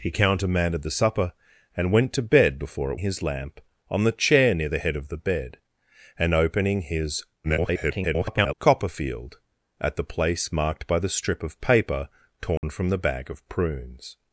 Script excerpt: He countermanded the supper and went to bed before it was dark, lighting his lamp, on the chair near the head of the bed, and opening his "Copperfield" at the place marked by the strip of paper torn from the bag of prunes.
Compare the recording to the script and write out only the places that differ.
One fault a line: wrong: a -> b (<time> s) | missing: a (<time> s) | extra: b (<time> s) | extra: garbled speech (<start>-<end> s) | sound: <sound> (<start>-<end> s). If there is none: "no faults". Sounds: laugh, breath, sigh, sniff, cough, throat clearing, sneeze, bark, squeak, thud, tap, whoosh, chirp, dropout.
missing: was dark lighting (3.0 s)
extra: garbled speech (7.4-8.5 s)
sound: dropout (12.6-12.6 s)